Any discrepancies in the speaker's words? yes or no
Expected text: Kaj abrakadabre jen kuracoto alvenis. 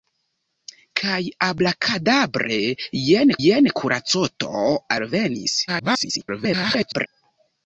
yes